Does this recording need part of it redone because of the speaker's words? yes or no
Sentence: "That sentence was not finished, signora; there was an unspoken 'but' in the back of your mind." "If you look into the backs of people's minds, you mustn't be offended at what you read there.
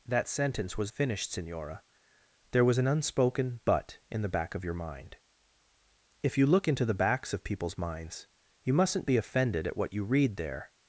yes